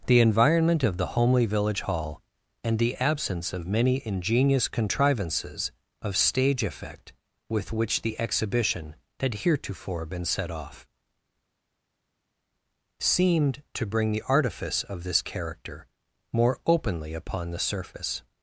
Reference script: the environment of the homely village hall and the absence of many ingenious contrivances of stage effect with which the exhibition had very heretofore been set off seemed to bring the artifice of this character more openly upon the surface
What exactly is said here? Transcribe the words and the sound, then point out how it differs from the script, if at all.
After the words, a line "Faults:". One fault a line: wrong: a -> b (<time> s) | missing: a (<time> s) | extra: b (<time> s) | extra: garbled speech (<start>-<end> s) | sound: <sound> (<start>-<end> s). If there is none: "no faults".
the environment of the homely village hall and the absence of many ingenious contrivances of stage effect with which the exhibition had heretofore been set off seemed to bring the artifice of this character more openly upon the surface
Faults:
missing: very (9.3 s)